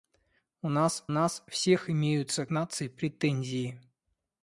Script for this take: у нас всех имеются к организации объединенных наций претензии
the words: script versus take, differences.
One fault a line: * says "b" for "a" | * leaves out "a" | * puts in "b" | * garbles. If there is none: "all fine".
* puts in "нас"
* leaves out "к организации объединенных"